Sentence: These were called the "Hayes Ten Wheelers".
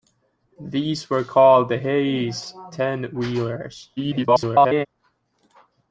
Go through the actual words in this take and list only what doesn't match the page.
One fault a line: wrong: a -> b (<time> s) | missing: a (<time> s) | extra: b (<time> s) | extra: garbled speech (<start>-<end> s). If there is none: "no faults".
extra: garbled speech (4.0-4.9 s)